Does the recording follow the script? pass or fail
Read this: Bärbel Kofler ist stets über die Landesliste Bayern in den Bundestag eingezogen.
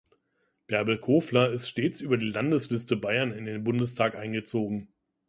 pass